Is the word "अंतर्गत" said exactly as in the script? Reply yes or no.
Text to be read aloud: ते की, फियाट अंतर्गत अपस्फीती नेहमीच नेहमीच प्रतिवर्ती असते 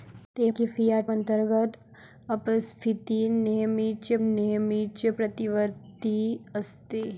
yes